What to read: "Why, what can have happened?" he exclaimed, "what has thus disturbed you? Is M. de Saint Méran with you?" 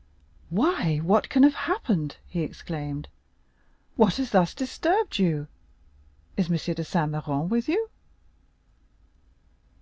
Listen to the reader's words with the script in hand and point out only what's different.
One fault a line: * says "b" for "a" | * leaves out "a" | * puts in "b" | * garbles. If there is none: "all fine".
all fine